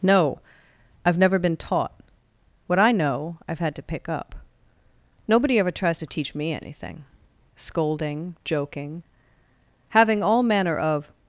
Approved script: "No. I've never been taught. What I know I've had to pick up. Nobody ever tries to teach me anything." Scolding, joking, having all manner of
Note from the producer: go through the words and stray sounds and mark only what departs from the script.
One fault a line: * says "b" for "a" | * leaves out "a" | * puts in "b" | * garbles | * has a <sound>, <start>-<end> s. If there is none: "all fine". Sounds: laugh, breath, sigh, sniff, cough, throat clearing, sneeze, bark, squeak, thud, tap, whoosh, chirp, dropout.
all fine